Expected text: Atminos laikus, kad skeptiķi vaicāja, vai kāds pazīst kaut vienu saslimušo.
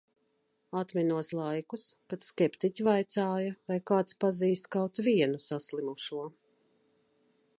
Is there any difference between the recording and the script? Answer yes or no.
no